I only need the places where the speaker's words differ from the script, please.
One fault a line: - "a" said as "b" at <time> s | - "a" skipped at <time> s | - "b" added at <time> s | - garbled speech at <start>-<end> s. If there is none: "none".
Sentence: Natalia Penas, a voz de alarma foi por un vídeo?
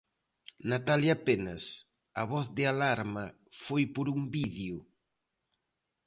none